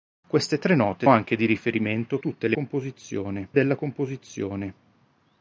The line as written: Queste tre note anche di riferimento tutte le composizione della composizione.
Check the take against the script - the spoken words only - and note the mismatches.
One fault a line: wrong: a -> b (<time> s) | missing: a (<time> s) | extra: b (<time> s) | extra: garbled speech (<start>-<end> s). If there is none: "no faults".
no faults